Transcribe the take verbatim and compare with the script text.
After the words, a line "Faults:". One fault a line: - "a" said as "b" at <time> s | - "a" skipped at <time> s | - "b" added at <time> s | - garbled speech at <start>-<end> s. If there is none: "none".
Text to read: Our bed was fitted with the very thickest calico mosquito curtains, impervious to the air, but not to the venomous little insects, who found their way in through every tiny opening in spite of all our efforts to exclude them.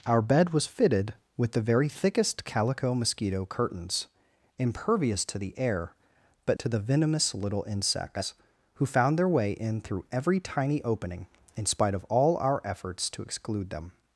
Our bed was fitted with the very thickest calico mosquito curtains, impervious to the air, but to the venomous little insects, who found their way in through every tiny opening in spite of all our efforts to exclude them.
Faults:
- "not" skipped at 6.6 s